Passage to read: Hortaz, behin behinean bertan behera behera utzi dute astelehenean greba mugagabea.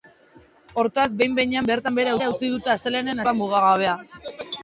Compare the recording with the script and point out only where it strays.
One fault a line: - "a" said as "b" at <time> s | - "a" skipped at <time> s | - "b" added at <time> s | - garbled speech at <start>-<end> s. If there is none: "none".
none